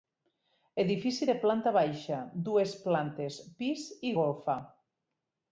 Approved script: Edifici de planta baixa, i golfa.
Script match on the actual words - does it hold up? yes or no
no